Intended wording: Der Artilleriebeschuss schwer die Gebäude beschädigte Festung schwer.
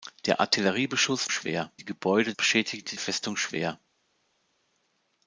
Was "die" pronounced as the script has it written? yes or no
yes